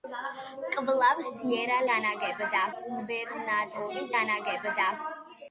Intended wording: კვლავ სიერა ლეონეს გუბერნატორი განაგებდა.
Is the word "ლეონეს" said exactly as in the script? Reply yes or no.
no